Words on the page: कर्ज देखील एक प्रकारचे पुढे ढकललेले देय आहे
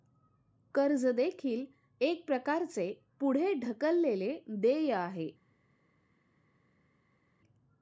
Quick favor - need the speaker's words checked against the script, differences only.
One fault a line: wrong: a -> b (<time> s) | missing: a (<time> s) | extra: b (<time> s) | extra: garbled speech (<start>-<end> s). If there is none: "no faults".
no faults